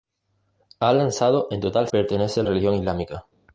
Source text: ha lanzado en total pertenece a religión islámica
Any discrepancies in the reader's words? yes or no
no